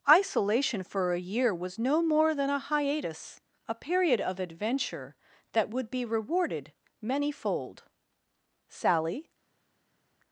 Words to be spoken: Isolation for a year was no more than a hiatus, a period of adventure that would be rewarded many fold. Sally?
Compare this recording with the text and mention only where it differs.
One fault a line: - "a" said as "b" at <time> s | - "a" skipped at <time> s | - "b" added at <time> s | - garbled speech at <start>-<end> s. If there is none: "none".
none